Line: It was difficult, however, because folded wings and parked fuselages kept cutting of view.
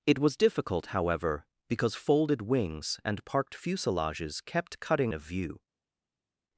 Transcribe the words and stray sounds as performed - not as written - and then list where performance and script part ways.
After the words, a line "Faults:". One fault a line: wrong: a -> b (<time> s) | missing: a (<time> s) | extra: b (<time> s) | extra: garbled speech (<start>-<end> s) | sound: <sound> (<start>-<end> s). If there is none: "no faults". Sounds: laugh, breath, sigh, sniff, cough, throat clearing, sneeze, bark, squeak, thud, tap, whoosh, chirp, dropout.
It was difficult, however, because folded wings and parked fuselages kept cutting of view.
Faults:
no faults